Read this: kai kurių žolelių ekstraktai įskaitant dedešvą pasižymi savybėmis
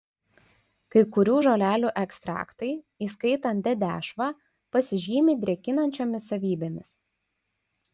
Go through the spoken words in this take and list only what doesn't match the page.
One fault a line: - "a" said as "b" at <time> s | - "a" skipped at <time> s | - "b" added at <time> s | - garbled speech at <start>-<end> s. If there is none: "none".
- "drėkinančiomis" added at 5.5 s